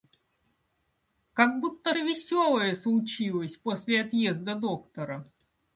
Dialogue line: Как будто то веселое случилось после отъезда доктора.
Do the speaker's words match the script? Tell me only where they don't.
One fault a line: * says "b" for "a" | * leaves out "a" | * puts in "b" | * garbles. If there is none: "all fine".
all fine